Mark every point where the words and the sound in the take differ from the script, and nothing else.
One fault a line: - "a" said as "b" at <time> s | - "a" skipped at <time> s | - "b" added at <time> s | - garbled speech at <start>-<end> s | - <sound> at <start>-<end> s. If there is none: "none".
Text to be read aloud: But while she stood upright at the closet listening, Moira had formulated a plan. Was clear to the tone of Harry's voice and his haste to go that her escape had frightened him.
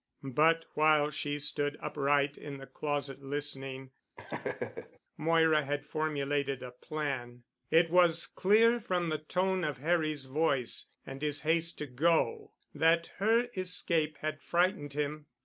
- "at" said as "in" at 2.4 s
- laugh at 4.2-5.0 s
- "It" added at 7.7 s
- "to" said as "from" at 8.8 s